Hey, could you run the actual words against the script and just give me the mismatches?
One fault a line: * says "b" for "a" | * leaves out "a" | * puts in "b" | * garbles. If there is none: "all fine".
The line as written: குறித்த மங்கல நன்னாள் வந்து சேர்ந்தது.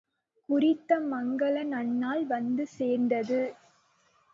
all fine